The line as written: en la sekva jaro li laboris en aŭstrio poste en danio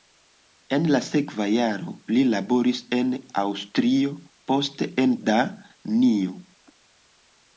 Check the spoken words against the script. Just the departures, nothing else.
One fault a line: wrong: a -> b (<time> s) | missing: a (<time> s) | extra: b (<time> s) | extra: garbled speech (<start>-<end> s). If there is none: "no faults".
no faults